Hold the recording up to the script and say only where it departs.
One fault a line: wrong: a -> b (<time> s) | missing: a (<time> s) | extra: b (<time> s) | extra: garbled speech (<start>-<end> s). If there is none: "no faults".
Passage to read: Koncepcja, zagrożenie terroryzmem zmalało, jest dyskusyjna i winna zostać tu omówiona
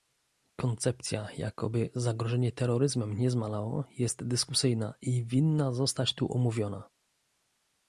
extra: jakoby (1.4 s)
extra: nie (3.2 s)